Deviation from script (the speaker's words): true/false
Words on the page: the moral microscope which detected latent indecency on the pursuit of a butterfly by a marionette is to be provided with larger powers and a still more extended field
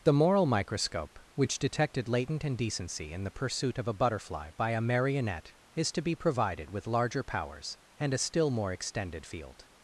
true